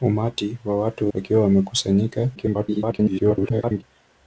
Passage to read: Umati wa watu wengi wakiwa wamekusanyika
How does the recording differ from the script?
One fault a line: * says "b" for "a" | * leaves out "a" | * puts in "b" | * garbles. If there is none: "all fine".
* leaves out "wengi"
* garbles